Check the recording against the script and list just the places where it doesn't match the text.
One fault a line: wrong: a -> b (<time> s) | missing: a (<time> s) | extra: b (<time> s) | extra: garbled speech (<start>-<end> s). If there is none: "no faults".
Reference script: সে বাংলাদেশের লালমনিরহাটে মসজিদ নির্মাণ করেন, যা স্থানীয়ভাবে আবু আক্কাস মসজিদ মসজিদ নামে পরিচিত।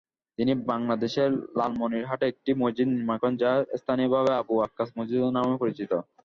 wrong: সে -> তিনি (0.4 s)
extra: একটি (2.3 s)
missing: মসজিদ (5.2 s)